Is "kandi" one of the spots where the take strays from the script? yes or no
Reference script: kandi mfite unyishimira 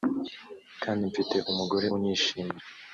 no